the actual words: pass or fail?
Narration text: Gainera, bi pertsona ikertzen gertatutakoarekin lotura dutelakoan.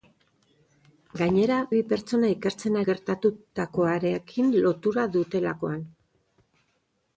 pass